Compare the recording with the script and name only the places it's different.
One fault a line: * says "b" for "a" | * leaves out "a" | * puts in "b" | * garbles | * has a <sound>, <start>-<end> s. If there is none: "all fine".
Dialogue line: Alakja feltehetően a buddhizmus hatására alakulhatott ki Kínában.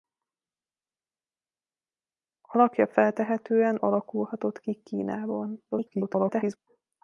* leaves out "a buddhizmus hatására"
* garbles